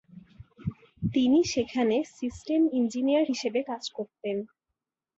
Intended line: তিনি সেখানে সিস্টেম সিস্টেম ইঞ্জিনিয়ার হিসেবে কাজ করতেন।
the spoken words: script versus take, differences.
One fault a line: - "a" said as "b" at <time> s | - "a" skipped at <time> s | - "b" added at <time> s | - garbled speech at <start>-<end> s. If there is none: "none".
- "সিস্টেম" skipped at 2.6 s